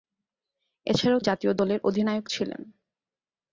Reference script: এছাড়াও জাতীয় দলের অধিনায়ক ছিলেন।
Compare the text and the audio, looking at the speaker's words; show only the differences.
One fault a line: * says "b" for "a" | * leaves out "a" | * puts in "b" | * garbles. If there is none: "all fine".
all fine